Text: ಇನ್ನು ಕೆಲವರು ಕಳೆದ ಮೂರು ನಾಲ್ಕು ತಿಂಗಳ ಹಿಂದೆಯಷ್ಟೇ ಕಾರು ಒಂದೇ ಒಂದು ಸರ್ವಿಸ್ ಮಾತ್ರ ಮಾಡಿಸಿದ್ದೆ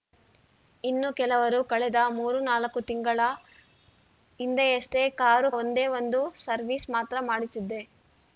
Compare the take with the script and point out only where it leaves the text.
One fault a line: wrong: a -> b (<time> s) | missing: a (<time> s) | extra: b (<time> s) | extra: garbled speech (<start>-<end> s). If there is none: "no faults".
no faults